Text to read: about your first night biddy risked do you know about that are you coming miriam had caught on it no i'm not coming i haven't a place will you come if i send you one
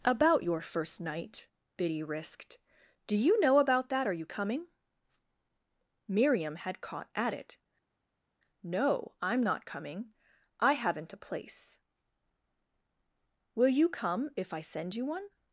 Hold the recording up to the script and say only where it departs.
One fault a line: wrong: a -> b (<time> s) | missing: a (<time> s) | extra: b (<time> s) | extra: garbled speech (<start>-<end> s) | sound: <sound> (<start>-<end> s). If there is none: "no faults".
wrong: on -> at (7.1 s)